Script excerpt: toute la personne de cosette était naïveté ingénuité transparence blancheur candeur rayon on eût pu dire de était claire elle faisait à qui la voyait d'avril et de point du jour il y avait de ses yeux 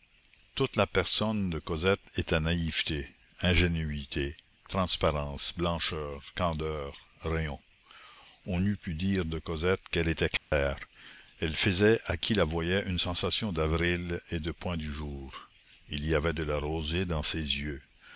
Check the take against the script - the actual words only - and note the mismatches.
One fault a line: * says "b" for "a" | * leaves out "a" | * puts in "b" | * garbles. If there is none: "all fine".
* puts in "cosette qu'elle"
* puts in "une sensation"
* puts in "la rosée dans"